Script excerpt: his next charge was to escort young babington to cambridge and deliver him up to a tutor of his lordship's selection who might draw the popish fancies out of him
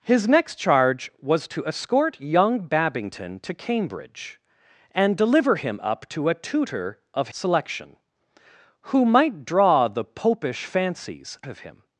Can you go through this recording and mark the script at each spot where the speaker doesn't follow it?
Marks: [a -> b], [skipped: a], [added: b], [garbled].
his next charge was to escort young babington to cambridge and deliver him up to a tutor of [skipped: his lordship's] selection who might draw the popish fancies [skipped: out] of him